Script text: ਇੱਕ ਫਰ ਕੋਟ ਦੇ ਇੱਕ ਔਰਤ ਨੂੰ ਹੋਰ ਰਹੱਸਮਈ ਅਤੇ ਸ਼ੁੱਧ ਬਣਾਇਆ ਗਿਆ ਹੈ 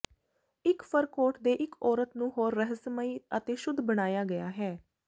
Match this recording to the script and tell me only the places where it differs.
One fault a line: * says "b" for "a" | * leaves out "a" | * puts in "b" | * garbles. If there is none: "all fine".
all fine